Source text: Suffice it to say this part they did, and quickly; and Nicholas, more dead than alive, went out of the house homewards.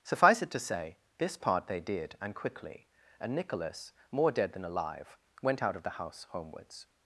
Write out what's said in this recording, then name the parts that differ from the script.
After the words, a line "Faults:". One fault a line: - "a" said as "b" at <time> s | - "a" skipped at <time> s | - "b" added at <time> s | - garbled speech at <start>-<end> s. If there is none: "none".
Suffice it to say this part they did, and quickly; and Nicholas, more dead than alive, went out of the house homewards.
Faults:
none